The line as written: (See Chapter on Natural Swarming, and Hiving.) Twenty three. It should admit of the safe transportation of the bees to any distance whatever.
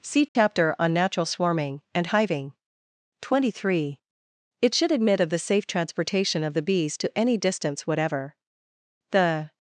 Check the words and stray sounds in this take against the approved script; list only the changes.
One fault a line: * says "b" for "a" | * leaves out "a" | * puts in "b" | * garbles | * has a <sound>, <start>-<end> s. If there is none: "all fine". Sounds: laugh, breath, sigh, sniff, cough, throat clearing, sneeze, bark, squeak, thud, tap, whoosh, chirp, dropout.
* has a dropout, 0.3-0.4 s
* puts in "The"